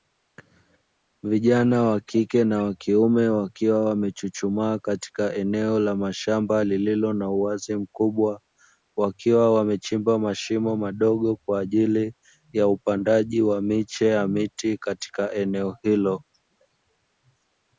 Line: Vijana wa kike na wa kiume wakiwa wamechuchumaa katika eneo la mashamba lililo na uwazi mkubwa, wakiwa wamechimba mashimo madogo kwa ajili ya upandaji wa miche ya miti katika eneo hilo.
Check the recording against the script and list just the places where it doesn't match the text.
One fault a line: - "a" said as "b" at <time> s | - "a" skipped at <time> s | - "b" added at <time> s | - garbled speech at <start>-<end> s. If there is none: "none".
none